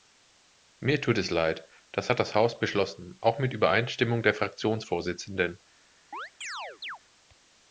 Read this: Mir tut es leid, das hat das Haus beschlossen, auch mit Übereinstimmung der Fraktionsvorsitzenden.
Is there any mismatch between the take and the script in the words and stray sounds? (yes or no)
yes